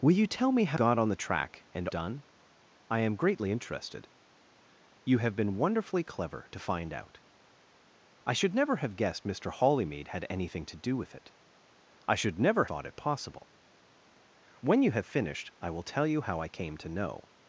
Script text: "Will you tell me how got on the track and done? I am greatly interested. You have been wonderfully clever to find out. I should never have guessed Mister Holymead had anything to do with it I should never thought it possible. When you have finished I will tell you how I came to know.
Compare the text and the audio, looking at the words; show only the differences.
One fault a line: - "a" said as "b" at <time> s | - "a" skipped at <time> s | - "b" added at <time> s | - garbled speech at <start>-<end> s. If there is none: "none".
none